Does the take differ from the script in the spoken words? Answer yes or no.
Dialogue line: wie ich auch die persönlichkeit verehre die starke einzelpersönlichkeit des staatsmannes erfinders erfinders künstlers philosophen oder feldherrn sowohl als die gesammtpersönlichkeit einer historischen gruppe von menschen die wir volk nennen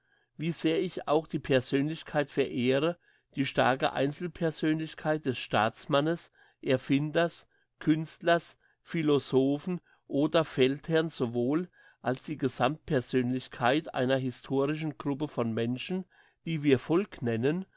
yes